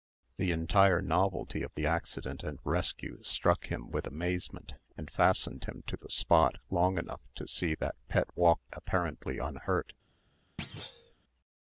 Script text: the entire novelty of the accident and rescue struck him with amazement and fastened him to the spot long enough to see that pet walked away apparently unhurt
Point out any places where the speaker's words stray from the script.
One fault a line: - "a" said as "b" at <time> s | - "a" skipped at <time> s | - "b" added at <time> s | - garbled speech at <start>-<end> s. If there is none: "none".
- "away" skipped at 8.7 s